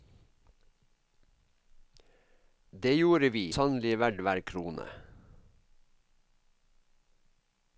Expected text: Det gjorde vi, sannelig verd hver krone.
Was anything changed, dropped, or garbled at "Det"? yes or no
no